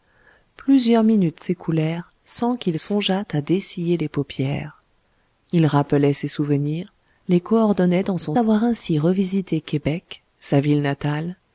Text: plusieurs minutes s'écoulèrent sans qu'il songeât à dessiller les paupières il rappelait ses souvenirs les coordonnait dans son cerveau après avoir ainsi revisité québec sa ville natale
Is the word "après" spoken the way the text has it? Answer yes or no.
no